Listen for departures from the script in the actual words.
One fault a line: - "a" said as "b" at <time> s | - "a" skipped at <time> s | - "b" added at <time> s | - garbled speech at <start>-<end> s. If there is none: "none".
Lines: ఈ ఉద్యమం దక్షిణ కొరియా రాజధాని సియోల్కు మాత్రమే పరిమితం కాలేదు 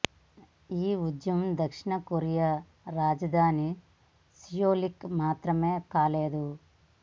- "పరిమితం" skipped at 5.7 s